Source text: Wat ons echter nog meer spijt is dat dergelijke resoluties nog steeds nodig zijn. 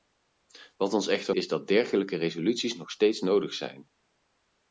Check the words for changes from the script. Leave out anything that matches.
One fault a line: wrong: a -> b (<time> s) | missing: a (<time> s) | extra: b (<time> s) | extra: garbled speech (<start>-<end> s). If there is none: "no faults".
missing: nog meer spijt (1.4 s)